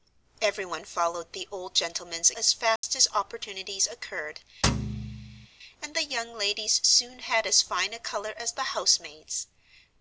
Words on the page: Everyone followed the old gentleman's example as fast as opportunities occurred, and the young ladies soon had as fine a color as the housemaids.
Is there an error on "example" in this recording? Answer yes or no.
yes